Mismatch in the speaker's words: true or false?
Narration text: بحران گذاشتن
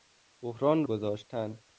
false